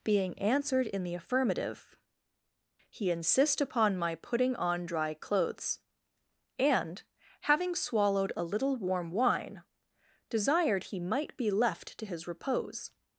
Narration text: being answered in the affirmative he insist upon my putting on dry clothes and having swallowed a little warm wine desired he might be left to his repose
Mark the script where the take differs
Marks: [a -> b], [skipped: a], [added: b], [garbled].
being answered in the affirmative he insist upon my putting on dry clothes and having swallowed a little warm wine desired he might be left to his repose